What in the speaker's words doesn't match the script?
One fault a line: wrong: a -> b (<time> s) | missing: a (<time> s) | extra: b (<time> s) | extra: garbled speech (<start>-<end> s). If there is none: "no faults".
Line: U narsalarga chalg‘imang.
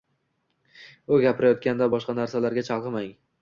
extra: gapirayotganda boshqa (1.3 s)